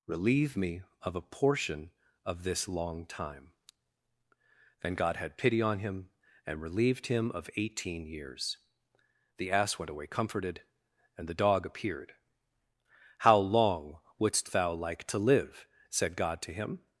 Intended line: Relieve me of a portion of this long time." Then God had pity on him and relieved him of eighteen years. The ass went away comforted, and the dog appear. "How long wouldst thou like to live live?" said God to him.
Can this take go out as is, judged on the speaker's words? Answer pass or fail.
fail